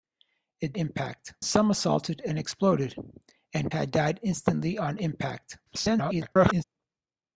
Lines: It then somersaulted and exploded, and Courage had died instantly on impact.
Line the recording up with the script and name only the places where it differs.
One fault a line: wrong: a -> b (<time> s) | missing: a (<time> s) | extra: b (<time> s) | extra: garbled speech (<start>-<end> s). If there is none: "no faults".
wrong: then -> impact (0.7 s)
missing: Courage (3.7 s)
extra: garbled speech (5.7-6.6 s)